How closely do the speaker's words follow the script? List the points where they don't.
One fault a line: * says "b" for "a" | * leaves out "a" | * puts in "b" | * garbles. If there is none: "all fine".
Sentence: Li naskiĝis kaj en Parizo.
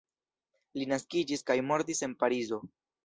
* puts in "mortis"